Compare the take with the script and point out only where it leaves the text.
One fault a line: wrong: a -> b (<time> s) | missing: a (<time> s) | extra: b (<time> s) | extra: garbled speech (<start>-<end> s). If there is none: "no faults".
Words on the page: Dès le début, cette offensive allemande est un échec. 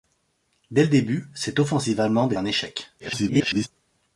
missing: est (2.3 s)
extra: garbled speech (3.0-3.7 s)